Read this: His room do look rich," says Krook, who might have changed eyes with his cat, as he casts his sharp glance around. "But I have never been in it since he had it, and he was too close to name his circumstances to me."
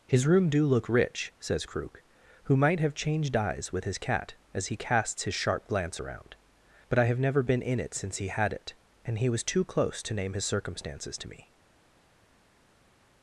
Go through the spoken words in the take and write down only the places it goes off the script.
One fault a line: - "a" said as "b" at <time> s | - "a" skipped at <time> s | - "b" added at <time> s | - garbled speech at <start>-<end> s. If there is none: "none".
none